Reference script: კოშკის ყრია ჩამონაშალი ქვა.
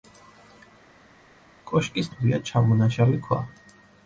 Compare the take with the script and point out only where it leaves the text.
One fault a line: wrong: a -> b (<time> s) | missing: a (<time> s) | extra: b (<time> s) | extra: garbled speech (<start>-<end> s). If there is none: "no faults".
no faults